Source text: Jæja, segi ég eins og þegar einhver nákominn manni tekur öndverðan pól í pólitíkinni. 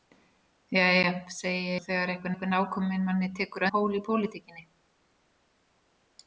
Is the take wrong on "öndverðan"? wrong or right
wrong